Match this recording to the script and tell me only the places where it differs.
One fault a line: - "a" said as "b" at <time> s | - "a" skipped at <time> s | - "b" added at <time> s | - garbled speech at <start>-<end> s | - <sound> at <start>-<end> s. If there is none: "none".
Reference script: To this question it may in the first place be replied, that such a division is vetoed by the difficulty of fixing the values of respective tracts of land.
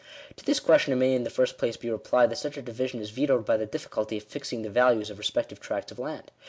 none